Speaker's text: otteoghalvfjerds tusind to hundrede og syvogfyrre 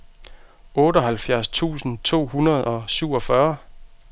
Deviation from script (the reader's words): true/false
false